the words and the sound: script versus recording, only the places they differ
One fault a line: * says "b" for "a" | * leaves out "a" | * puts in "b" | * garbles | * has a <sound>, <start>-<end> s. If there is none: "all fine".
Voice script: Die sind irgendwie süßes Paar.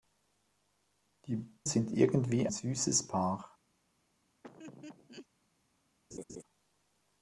* has a laugh, 4.4-5.3 s
* has a laugh, 6.1-6.4 s